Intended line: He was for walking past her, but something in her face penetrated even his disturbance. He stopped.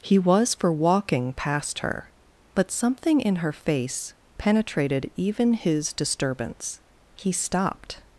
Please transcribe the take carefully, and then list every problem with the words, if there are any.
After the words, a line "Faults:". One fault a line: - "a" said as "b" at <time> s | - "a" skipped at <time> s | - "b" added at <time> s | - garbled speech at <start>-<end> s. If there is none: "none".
He was for walking past her, but something in her face penetrated even his disturbance. He stopped.
Faults:
none